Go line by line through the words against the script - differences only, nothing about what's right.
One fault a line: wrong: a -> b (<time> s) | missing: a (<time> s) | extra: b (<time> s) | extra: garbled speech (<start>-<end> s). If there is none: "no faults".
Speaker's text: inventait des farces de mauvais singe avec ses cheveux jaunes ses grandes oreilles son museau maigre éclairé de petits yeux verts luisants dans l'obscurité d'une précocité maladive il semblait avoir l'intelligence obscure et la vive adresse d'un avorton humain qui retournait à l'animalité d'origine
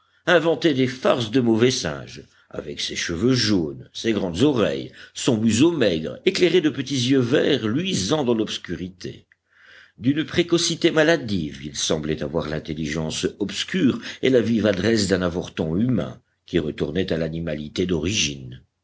no faults